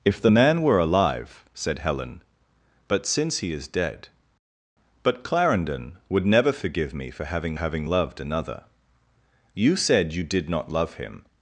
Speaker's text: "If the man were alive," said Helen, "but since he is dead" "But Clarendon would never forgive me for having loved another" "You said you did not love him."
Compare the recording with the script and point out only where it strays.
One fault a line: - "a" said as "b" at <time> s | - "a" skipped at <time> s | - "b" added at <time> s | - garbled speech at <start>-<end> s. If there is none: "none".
- "having" added at 7.5 s